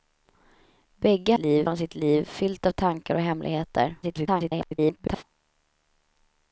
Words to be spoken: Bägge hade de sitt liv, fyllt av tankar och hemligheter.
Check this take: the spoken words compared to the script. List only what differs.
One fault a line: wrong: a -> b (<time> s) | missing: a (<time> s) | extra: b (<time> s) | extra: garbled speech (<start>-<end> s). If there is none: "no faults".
wrong: hade -> liv (1.4 s)
extra: garbled speech (4.0-5.2 s)